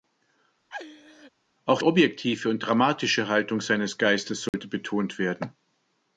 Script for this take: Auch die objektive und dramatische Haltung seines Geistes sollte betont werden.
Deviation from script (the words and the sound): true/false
true